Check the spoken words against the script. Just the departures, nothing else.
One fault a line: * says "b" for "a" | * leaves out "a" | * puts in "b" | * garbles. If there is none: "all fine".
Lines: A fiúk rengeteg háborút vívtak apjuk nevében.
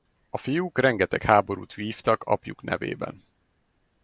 all fine